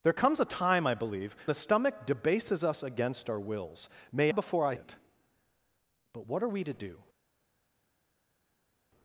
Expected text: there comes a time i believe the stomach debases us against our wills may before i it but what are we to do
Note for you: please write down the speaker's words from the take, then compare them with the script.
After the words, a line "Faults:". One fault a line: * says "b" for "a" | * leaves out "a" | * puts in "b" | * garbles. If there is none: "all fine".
there comes a time i believe the stomach debases us against our wills may before i it but what are we to do
Faults:
all fine